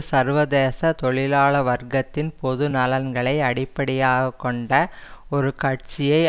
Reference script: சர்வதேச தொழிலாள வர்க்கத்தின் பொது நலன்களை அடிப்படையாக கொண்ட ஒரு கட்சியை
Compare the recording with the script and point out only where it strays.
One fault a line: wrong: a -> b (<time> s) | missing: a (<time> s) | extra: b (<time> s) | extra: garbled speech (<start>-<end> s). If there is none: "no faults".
no faults